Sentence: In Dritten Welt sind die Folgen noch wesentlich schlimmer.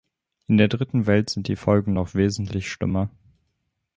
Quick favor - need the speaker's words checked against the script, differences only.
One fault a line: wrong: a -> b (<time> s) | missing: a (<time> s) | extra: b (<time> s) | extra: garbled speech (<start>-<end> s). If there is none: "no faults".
extra: der (0.6 s)